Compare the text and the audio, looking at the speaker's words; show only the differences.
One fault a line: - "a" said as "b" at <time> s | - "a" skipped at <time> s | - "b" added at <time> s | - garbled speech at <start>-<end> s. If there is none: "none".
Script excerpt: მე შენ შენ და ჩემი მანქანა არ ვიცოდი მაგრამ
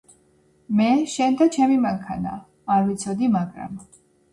- "შენ" skipped at 1.4 s